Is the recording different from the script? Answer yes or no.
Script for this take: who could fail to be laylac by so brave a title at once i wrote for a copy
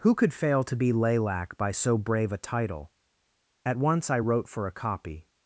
no